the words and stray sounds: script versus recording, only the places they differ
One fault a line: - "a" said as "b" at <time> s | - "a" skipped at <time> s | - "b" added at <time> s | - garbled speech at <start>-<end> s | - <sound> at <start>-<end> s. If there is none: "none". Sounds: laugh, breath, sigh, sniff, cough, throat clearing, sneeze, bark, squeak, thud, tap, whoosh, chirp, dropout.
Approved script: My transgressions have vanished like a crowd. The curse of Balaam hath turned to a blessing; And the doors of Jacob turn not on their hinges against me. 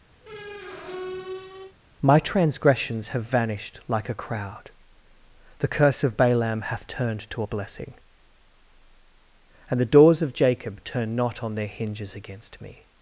- squeak at 0.2-1.8 s